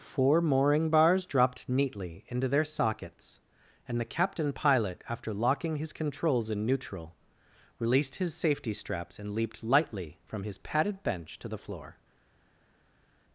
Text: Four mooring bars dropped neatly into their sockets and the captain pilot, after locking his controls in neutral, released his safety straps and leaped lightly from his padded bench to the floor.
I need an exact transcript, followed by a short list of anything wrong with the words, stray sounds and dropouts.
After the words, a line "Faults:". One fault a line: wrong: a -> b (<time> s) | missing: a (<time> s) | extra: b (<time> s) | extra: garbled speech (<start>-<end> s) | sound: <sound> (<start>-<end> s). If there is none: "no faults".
Four mooring bars dropped neatly into their sockets and the captain pilot, after locking his controls in neutral, released his safety straps and leaped lightly from his padded bench to the floor.
Faults:
no faults